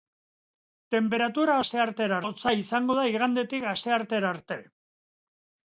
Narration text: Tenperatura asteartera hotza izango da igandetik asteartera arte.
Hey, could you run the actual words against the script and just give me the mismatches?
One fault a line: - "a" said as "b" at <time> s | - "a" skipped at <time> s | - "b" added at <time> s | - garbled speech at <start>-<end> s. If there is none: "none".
none